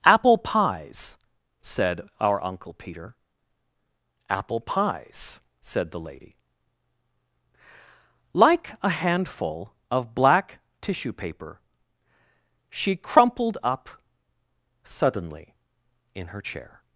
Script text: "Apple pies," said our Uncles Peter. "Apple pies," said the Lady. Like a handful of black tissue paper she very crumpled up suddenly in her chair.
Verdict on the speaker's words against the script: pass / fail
fail